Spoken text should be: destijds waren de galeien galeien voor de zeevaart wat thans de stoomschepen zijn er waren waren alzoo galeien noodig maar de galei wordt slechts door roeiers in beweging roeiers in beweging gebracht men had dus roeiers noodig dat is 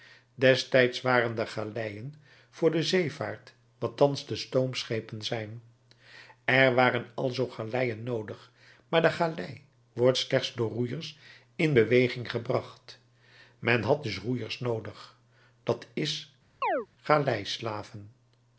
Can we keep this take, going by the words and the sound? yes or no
no